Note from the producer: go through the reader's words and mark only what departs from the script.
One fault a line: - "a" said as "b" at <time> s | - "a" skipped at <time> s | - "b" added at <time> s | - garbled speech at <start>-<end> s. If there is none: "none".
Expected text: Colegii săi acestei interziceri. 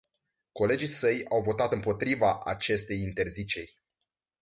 - "au votat împotriva" added at 1.3 s